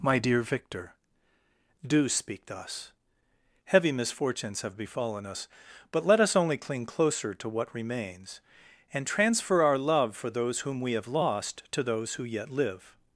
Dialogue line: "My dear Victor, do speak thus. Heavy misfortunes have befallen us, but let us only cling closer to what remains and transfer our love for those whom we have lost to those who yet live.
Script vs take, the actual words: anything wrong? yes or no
no